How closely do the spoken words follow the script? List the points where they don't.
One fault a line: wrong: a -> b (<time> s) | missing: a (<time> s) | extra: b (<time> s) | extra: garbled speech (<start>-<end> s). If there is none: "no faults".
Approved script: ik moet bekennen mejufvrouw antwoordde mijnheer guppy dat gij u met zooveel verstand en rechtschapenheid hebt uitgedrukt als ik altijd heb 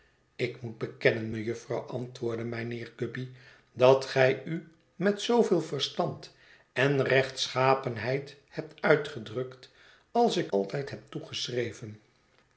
no faults